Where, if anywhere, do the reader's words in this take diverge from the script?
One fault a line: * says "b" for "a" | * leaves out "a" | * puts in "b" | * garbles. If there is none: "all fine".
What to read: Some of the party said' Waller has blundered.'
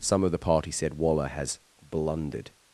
all fine